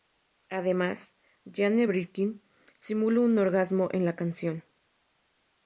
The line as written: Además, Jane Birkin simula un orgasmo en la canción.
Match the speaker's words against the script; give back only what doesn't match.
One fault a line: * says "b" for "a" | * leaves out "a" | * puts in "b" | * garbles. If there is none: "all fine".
all fine